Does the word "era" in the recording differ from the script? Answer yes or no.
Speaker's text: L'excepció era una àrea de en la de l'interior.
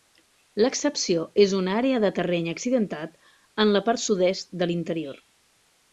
yes